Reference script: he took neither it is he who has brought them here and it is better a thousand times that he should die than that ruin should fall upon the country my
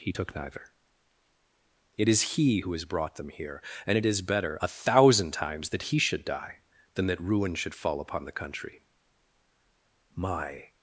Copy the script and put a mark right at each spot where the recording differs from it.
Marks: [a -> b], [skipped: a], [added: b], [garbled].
he took neither it is he who has brought them here and it is better a thousand times that he should die than that ruin should fall upon the country my